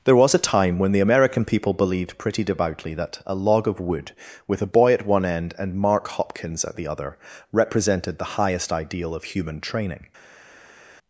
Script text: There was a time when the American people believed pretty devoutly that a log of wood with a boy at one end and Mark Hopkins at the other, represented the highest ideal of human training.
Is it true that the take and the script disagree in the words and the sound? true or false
false